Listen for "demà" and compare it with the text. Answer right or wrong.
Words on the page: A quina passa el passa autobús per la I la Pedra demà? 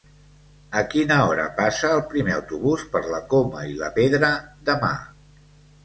right